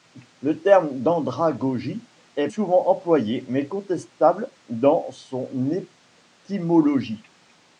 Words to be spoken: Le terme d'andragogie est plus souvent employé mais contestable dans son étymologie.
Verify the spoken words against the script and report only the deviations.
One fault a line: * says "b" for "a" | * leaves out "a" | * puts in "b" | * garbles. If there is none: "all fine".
* leaves out "plus"